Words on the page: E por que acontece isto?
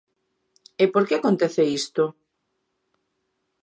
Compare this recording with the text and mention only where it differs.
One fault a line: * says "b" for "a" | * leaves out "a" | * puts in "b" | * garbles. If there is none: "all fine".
all fine